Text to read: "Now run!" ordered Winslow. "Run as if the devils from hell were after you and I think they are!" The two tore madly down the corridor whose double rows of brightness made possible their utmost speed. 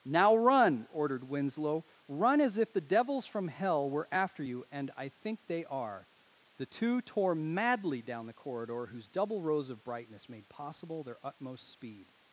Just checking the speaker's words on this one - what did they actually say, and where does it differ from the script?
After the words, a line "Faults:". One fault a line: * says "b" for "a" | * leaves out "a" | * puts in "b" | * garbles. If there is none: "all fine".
"Now run!" ordered Winslow. "Run as if the devils from hell were after you and I think they are!" The two tore madly down the corridor whose double rows of brightness made possible their utmost speed.
Faults:
all fine